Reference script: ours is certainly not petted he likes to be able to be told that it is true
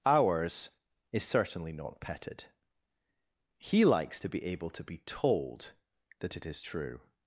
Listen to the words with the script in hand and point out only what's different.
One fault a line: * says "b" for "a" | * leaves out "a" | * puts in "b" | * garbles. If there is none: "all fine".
all fine